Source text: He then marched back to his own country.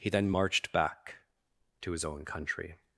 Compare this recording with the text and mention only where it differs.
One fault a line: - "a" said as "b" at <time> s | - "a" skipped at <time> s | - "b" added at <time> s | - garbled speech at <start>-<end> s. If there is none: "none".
none